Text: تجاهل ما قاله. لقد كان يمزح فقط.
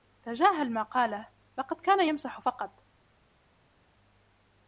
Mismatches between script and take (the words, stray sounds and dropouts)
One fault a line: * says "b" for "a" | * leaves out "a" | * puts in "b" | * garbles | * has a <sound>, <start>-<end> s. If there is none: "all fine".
all fine